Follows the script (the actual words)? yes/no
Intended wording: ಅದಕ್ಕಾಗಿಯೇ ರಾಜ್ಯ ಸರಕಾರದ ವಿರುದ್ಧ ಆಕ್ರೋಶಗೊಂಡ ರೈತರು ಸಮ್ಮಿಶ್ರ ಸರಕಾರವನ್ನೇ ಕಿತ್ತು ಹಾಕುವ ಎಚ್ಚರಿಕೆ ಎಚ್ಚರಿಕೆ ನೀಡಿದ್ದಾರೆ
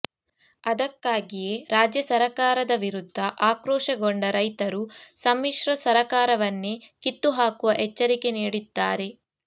no